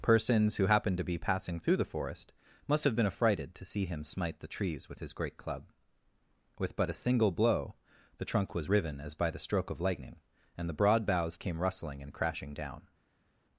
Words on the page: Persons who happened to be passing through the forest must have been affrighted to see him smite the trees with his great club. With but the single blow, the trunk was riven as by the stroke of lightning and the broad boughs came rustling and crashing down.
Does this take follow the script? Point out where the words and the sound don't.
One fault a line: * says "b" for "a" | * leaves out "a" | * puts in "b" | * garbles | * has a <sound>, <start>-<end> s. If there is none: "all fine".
* says "a" for "the"